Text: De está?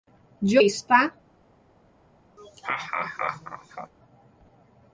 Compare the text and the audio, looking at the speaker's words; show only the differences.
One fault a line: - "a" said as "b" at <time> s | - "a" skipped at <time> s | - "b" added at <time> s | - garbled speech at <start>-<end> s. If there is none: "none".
none